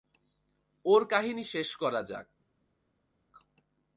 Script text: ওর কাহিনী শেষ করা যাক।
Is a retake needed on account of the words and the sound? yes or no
no